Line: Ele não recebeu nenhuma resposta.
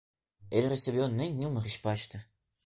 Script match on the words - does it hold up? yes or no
no